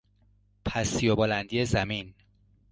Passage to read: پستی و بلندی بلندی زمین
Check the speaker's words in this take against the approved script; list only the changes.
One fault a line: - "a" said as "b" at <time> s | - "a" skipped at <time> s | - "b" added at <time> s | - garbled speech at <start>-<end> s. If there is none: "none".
- "بلندی" skipped at 1.6 s